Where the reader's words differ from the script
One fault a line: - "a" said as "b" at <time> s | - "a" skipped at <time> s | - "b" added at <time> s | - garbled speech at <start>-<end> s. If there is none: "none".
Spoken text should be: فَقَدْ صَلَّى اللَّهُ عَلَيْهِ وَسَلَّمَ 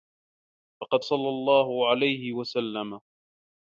none